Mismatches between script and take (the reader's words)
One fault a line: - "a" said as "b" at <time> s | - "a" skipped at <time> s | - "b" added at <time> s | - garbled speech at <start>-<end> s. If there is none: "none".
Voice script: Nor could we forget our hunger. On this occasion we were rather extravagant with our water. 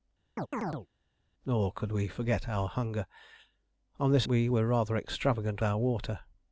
- "occasion" skipped at 4.3 s
- "with" skipped at 5.6 s